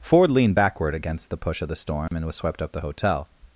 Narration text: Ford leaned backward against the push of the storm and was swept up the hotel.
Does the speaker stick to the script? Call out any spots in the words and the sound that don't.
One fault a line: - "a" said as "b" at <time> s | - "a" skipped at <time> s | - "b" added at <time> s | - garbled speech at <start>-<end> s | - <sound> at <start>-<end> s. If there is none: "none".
- dropout at 2.1-2.1 s